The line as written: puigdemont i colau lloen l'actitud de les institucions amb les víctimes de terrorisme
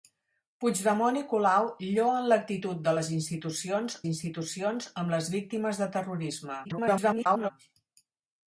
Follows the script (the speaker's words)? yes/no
no